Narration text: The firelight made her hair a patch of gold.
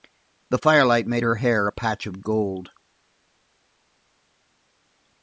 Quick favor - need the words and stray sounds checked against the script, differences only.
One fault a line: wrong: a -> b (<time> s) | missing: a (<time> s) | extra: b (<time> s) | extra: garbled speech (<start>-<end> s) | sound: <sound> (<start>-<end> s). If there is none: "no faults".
no faults